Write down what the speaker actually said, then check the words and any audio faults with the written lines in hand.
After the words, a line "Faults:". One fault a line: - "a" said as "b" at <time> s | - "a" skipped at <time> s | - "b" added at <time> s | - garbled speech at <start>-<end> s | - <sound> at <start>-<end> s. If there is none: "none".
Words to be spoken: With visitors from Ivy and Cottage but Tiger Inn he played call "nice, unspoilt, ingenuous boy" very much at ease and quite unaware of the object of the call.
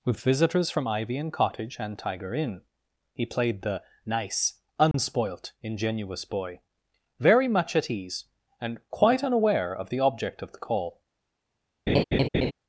With visitors from Ivy and Cottage and Tiger Inn he played the "nice, unspoilt, ingenuous boy" very much at ease and quite unaware of the object of the call.
Faults:
- "but" said as "and" at 1.8 s
- "call" said as "the" at 3.6 s
- dropout at 4.9-4.9 s
- laugh at 11.9-12.5 s